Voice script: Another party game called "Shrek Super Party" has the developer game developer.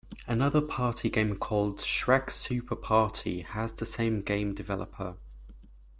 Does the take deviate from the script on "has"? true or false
false